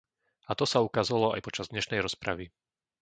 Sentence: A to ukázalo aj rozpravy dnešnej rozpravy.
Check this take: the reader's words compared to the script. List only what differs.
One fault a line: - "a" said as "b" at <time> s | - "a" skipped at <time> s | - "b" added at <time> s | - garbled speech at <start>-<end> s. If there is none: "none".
- "sa" added at 0.7 s
- "rozpravy" said as "počas" at 1.4 s